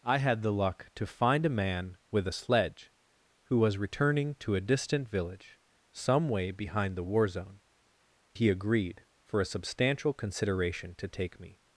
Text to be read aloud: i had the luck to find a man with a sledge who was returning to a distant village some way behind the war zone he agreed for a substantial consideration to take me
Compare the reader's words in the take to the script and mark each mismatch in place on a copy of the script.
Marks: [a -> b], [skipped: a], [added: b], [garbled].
i had the luck to find a man with a sledge who was returning to a distant village some way behind the war zone he agreed for a substantial consideration to take me